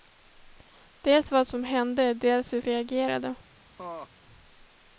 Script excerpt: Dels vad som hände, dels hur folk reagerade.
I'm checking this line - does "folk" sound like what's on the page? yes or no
no